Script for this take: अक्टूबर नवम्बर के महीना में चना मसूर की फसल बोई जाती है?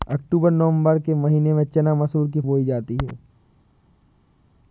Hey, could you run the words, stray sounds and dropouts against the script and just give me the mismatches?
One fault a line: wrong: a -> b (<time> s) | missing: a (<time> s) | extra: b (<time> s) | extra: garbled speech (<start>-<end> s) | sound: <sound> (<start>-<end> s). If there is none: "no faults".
missing: फसल (2.4 s)